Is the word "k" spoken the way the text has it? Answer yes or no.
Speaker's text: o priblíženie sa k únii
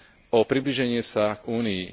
no